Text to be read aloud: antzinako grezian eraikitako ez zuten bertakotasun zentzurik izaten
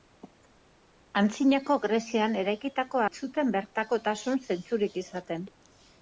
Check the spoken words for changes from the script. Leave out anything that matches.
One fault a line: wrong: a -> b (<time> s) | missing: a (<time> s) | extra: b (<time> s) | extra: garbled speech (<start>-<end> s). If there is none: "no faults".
no faults